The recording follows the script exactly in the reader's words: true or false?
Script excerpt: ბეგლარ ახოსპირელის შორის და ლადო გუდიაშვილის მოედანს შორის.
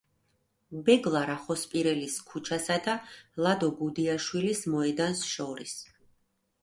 false